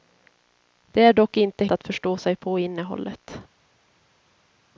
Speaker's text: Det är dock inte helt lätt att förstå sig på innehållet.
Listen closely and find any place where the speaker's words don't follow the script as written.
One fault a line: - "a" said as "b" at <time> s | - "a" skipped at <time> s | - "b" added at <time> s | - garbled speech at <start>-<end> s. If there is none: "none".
- "helt lätt" skipped at 1.6 s